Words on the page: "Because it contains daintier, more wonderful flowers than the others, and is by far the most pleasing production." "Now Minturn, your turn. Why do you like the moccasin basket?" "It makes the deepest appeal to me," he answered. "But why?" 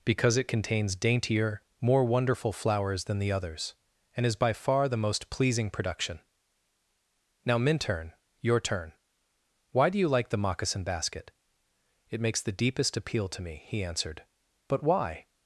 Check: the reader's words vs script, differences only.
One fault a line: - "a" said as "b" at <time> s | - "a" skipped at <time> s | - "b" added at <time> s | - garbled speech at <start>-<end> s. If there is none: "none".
none